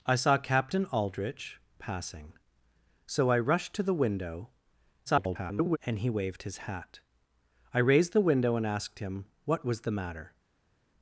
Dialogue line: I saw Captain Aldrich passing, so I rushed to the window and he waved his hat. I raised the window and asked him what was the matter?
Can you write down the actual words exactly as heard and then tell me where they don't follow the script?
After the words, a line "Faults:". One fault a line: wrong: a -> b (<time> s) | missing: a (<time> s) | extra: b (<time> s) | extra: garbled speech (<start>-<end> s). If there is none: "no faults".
I saw Captain Aldrich passing, so I rushed to the window [garbled] and he waved his hat. I raised the window and asked him what was the matter?
Faults:
extra: garbled speech (5.1-5.8 s)